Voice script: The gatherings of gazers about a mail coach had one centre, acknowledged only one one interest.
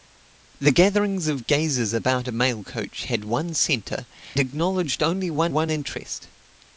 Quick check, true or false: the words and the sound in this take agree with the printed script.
true